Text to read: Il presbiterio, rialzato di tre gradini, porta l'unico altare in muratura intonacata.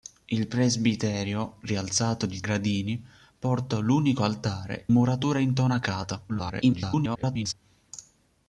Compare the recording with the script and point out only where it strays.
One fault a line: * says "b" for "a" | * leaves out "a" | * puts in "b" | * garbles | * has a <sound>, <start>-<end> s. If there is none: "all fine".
* leaves out "tre"
* leaves out "in"
* garbles